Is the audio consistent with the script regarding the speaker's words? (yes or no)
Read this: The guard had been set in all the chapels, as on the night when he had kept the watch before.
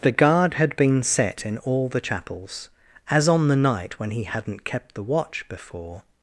no